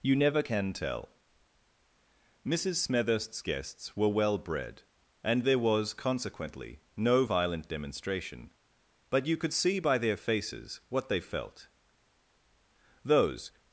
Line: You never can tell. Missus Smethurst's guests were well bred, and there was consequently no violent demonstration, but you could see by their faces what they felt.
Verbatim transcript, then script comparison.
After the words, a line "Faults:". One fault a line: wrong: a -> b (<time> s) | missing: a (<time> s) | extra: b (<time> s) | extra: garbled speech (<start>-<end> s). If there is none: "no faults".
You never can tell. Missus Smethurst's guests were well bred, and there was consequently no violent demonstration, but you could see by their faces what they felt. Those
Faults:
extra: Those (13.1 s)